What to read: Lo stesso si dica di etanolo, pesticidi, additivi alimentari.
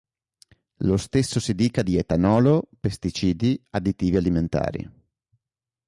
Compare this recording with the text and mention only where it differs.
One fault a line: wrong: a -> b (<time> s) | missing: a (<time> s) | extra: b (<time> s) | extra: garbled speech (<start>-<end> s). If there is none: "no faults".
no faults